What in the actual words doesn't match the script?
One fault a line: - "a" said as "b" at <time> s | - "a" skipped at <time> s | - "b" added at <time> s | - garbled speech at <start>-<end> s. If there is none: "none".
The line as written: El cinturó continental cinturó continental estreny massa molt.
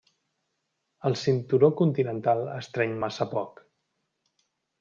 - "cinturó continental" skipped at 2.4 s
- "molt" said as "poc" at 3.4 s